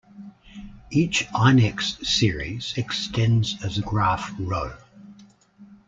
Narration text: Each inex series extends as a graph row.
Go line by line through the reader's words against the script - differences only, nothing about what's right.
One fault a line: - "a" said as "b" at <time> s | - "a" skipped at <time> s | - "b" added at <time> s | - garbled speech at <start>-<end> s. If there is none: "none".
none